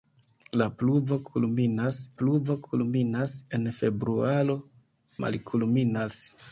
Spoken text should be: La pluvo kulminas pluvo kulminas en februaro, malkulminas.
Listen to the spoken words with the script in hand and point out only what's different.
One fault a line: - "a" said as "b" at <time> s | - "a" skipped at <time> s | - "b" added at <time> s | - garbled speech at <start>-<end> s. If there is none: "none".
none